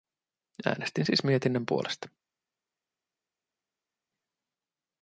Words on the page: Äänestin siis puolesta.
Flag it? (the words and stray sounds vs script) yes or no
yes